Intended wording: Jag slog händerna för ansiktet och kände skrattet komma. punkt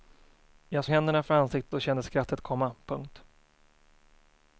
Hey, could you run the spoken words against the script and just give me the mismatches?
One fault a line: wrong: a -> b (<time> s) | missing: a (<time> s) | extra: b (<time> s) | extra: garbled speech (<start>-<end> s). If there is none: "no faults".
missing: slog (0.8 s)